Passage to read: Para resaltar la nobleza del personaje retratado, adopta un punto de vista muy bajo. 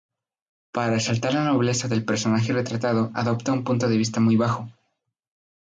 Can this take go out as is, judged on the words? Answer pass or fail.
pass